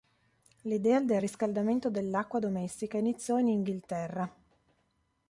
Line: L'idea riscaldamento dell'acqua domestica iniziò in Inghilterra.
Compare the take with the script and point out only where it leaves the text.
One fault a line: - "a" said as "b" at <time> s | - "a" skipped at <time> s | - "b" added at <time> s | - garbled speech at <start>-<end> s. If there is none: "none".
- "del" added at 1.0 s